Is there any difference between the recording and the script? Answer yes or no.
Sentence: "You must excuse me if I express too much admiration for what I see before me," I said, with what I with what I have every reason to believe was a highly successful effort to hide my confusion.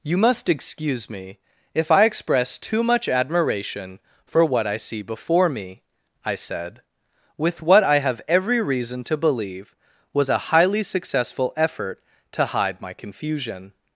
yes